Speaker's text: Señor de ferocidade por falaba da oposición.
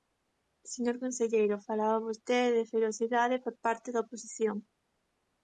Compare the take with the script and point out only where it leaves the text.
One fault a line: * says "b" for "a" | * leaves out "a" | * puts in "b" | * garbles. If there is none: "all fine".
* puts in "conselleiro falaba vostede"
* says "parte" for "falaba"